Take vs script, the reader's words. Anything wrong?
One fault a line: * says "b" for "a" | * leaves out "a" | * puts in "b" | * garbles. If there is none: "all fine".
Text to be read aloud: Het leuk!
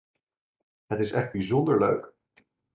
* puts in "is echt bijzonder"